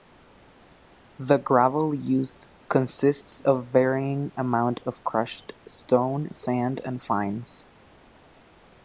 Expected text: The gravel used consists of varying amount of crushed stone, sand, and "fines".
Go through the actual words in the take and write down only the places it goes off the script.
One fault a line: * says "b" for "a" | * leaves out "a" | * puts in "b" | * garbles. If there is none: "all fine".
all fine